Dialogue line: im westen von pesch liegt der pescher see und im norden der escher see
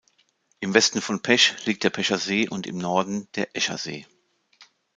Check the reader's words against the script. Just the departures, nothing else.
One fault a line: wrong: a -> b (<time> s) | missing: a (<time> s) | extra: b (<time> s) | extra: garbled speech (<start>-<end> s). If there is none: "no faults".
no faults